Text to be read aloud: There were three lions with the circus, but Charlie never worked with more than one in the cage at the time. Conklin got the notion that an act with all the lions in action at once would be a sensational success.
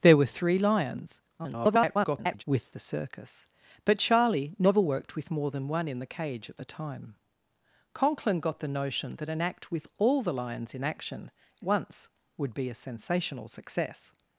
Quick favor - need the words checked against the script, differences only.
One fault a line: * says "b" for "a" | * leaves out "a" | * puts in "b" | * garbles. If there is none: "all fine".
* garbles
* leaves out "at"